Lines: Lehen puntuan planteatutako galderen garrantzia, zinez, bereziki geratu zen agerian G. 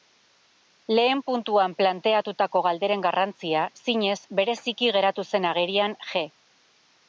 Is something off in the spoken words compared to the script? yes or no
no